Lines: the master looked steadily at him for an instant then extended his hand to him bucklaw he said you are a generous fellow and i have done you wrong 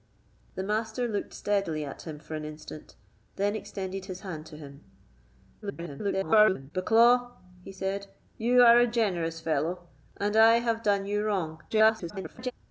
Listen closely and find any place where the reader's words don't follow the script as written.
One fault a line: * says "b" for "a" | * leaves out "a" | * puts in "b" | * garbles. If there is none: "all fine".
* garbles
* garbles